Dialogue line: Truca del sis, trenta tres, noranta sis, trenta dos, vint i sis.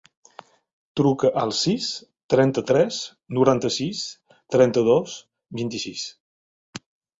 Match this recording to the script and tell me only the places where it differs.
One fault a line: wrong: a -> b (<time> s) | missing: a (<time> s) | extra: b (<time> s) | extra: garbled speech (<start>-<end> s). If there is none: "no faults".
wrong: del -> al (1.4 s)